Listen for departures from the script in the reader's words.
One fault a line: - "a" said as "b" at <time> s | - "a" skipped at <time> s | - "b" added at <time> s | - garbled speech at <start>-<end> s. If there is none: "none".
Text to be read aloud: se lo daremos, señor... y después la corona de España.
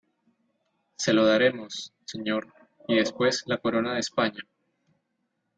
none